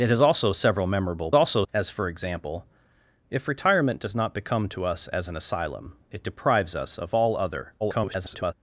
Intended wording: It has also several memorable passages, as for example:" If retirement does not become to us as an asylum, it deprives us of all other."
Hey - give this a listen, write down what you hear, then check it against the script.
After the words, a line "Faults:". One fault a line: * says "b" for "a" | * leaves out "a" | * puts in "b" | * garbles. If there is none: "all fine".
It has also several memorable also, as for example:" If retirement does not become to us as an asylum, it deprives us of all other." [garbled]
Faults:
* says "also" for "passages"
* garbles